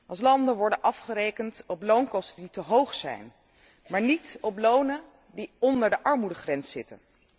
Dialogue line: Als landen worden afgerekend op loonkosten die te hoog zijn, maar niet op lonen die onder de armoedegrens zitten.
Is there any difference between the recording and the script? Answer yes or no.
no